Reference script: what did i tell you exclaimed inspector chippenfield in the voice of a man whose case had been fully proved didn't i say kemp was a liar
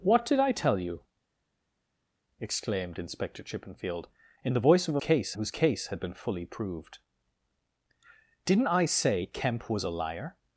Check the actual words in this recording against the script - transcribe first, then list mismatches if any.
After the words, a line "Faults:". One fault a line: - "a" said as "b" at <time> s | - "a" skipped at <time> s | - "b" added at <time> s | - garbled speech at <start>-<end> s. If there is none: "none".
what did i tell you exclaimed inspector chippenfield in the voice of a case whose case had been fully proved didn't i say kemp was a liar
Faults:
- "man" said as "case" at 5.0 s